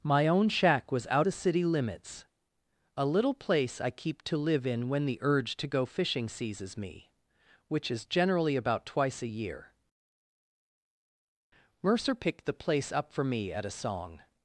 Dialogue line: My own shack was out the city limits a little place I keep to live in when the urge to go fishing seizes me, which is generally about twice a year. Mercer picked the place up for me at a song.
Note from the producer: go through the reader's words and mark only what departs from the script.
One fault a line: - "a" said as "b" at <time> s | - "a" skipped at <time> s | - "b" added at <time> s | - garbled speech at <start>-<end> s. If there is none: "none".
none